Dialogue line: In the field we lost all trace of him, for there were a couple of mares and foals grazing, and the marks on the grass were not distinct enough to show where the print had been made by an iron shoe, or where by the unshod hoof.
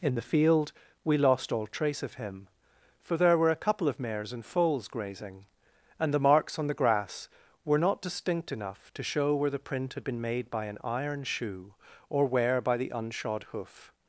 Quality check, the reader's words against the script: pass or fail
pass